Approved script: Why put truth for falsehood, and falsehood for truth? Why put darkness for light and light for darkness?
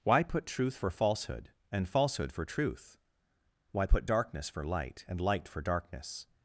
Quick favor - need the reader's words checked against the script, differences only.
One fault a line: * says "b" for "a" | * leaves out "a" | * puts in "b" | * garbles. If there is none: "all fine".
all fine